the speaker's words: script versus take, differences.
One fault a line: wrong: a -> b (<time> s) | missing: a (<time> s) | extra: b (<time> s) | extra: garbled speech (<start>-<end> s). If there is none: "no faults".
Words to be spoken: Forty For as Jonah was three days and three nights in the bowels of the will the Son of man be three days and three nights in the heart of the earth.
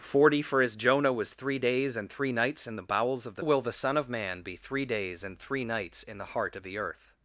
no faults